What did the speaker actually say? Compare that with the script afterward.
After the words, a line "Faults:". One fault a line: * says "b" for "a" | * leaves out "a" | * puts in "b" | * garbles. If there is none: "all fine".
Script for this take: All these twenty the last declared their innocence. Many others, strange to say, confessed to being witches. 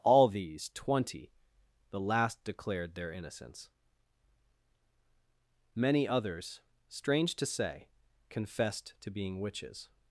All these twenty the last declared their innocence. Many others, strange to say, confessed to being witches.
Faults:
all fine